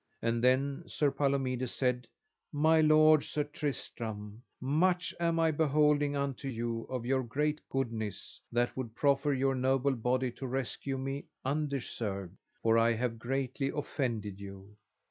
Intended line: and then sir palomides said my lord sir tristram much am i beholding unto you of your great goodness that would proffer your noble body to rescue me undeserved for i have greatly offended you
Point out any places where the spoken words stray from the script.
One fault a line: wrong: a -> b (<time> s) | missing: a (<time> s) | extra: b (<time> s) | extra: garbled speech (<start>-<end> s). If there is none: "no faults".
no faults